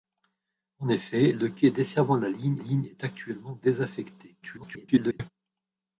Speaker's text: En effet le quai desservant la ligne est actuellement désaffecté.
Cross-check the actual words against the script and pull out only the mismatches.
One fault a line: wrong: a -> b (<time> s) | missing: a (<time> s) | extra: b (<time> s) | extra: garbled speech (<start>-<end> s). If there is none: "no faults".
extra: ligne (2.6 s)
extra: garbled speech (4.4-5.3 s)